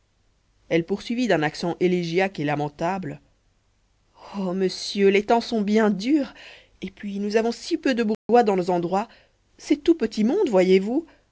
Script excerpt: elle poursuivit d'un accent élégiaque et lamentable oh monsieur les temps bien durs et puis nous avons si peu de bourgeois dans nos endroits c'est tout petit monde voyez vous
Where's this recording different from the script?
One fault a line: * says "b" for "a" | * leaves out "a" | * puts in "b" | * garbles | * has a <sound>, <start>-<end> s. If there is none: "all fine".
* puts in "sont"
* has a dropout, 8.1-8.3 s